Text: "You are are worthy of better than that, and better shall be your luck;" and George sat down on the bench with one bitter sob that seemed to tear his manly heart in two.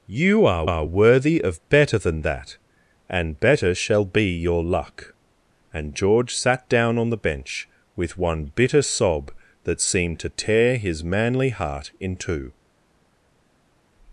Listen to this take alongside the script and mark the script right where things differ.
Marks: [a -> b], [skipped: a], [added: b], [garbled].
"You are are worthy of better than that, and better shall be your luck;" and George sat down on the bench with one bitter sob that seemed to tear his manly heart in two.